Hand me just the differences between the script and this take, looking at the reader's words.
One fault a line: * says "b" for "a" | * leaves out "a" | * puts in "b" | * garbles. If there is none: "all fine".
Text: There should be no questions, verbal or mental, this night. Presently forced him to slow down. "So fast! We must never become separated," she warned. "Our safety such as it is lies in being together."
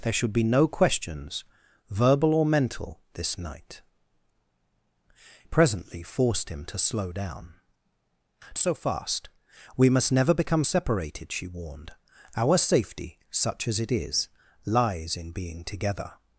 all fine